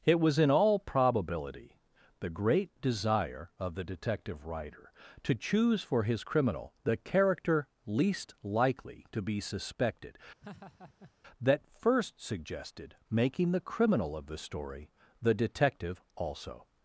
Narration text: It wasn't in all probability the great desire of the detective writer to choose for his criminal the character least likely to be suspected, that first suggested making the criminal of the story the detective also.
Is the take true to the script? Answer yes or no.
no